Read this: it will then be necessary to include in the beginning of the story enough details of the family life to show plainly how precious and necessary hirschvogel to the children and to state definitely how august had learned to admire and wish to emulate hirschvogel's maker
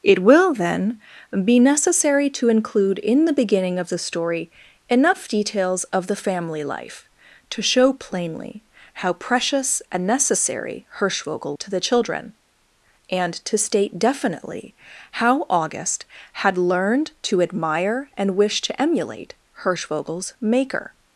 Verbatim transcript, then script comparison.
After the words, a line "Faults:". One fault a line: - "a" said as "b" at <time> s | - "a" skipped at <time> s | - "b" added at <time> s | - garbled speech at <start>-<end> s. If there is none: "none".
it will then be necessary to include in the beginning of the story enough details of the family life to show plainly how precious and necessary hirschvogel to the children and to state definitely how august had learned to admire and wish to emulate hirschvogel's maker
Faults:
none